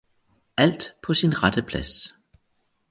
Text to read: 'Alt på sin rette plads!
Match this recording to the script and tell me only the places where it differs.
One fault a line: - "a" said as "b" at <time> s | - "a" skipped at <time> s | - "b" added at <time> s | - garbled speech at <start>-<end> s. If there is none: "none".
none